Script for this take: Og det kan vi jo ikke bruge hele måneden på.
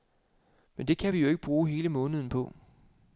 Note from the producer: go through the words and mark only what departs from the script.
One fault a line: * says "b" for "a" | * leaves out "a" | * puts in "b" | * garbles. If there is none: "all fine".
* says "Men" for "Og"